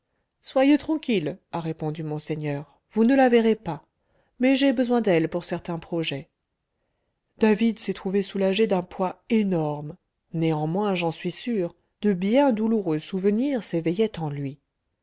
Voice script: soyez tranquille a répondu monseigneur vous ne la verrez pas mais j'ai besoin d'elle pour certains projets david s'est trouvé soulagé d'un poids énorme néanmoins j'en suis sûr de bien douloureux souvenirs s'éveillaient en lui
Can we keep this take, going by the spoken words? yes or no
yes